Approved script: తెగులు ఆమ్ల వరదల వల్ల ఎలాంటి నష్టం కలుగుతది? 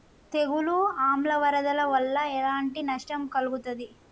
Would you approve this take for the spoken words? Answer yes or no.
yes